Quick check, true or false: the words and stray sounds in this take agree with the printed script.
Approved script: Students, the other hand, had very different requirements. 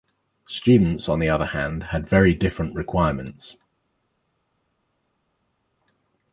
false